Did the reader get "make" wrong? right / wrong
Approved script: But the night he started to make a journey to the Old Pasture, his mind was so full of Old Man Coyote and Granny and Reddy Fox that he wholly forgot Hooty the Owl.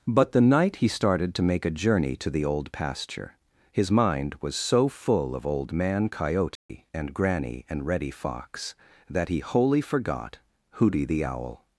right